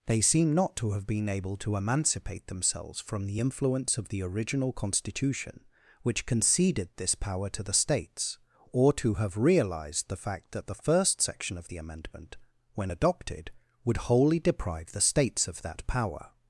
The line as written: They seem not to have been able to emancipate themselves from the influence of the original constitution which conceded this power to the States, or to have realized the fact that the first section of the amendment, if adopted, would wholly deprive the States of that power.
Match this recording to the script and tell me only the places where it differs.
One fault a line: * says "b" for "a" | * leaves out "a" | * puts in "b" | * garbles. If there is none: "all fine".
* says "when" for "if"